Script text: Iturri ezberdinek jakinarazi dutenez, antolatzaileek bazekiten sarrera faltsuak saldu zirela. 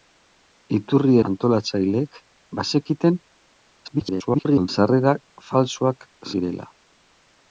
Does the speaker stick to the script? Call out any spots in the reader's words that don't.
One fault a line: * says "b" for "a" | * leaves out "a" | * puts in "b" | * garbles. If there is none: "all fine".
* leaves out "ezberdinek jakinarazi dutenez"
* garbles
* leaves out "saldu"